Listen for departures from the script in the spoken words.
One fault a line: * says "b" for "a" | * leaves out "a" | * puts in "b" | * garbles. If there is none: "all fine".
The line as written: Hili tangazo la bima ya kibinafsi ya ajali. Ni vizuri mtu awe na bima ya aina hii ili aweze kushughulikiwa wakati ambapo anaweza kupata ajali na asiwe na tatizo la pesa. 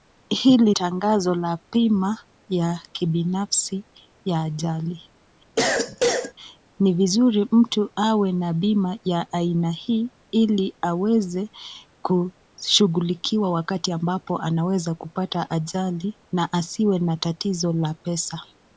all fine